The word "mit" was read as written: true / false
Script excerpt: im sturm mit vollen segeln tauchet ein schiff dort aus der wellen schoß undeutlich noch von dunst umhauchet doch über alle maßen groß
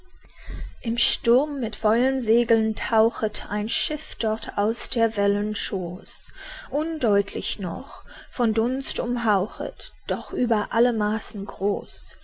true